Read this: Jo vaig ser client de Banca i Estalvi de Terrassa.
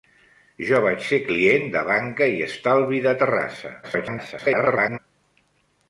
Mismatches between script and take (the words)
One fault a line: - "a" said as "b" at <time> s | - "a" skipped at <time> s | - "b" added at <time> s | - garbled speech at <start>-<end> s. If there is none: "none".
- garbled speech at 3.8-5.0 s